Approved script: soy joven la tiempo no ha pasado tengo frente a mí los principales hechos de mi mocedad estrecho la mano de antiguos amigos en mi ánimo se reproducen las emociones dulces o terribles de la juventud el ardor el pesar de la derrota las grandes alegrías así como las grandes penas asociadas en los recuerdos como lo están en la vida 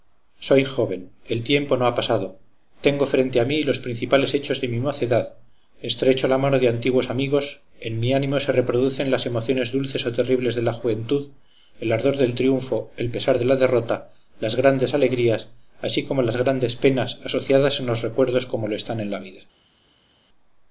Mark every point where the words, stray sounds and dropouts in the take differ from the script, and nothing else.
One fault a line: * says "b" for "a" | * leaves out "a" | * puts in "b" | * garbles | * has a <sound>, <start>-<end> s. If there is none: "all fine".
* says "el" for "la"
* puts in "del triunfo"